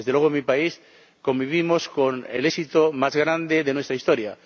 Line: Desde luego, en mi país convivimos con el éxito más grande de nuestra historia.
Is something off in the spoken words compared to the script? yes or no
no